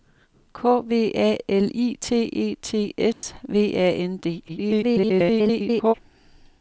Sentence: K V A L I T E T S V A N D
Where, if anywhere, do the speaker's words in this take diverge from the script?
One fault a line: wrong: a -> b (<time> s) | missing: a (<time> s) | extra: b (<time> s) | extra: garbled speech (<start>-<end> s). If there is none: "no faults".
extra: garbled speech (4.5-5.9 s)